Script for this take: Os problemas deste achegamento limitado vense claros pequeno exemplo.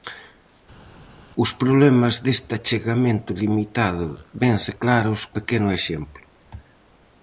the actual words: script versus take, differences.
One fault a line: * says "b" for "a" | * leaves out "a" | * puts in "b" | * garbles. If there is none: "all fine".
all fine